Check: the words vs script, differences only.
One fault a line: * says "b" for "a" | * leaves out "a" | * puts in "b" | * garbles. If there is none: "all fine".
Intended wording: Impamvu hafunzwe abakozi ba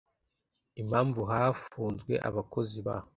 all fine